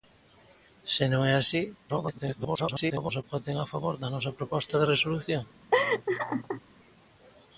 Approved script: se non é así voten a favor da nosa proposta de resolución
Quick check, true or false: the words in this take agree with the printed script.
false